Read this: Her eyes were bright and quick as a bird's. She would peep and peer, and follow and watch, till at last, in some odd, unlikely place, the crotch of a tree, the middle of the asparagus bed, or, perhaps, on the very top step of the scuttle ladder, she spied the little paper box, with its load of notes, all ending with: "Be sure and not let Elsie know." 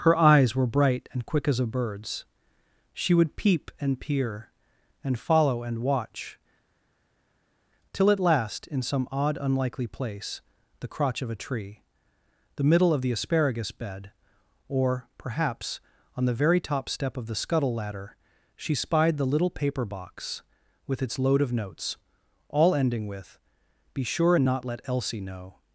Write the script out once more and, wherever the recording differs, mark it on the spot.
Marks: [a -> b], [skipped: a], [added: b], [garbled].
Her eyes were bright and quick as a bird's. She would peep and peer, and follow and watch, till at last, in some odd, unlikely place, the crotch of a tree, the middle of the asparagus bed, or, perhaps, on the very top step of the scuttle ladder, she spied the little paper box, with its load of notes, all ending with: "Be sure and not let Elsie know."